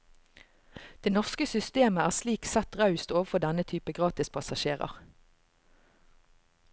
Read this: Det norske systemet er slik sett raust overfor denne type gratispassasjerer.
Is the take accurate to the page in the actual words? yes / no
yes